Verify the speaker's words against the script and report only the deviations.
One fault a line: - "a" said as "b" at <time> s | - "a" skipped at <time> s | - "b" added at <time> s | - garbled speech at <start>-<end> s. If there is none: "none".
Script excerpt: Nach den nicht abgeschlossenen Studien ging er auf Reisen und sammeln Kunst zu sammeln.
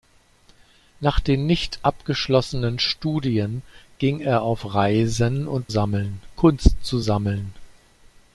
none